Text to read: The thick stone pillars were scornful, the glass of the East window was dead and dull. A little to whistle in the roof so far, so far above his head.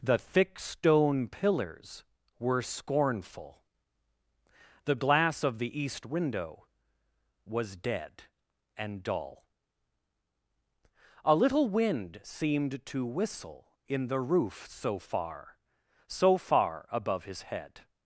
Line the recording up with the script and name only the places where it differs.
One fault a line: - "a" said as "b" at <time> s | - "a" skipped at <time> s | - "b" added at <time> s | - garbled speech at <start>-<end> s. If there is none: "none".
- "wind seemed" added at 11.7 s